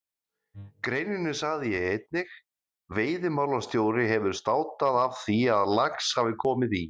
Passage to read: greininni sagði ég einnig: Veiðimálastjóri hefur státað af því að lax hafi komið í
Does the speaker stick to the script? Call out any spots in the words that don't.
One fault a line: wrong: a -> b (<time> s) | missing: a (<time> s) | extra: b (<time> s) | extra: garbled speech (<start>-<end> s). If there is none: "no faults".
no faults